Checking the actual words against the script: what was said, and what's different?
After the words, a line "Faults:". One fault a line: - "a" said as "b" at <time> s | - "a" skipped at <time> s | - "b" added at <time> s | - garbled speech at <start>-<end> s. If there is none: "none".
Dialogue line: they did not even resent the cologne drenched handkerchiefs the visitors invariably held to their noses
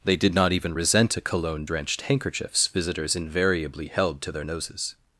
they did not even resent a cologne drenched handkerchiefs visitors invariably held to their noses
Faults:
- "the" said as "a" at 1.2 s
- "the" skipped at 2.7 s